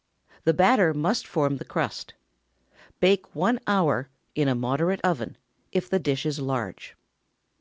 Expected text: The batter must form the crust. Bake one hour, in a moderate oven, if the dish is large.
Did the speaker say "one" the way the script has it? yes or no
yes